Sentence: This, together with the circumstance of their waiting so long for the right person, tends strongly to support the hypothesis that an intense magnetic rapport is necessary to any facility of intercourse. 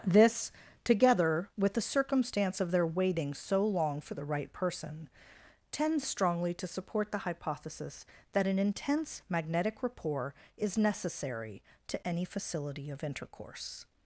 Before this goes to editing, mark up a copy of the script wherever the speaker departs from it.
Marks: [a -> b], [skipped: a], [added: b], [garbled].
This, together with the circumstance of their waiting so long for the right person, tends strongly to support the hypothesis that an intense magnetic rapport is necessary to any facility of intercourse.